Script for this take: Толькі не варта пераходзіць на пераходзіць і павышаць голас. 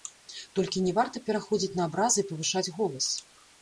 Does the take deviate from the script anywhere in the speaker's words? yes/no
yes